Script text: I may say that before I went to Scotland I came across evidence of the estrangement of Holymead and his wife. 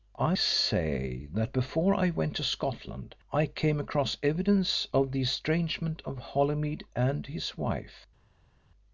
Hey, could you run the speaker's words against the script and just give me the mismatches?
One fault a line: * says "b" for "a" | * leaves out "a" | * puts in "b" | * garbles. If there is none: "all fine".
* leaves out "may"